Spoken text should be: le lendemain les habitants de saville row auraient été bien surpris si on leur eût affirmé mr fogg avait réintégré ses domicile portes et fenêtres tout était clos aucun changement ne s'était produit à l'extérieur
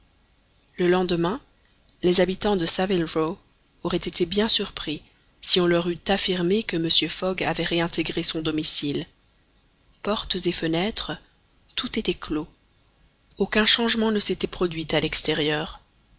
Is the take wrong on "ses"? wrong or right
wrong